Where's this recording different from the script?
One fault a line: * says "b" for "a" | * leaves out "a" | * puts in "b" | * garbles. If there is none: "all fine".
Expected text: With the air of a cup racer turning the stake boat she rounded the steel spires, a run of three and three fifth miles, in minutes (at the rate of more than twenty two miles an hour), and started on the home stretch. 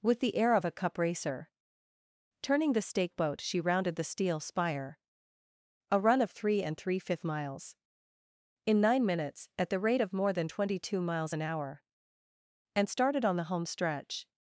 * says "spire" for "spires"
* puts in "nine"